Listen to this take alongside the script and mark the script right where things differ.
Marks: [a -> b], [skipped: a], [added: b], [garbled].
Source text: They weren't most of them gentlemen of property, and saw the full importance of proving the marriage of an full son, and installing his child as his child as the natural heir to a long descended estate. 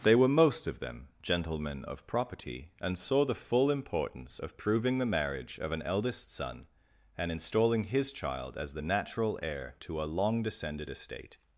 They [weren't -> were] most of them gentlemen of property, and saw the full importance of proving the marriage of an [full -> eldest] son, and installing his child as [skipped: his child as] the natural heir to a long descended estate.